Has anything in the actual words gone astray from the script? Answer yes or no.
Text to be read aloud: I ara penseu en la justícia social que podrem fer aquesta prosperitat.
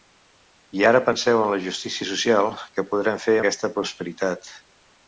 no